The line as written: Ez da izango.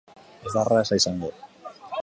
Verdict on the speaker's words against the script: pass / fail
fail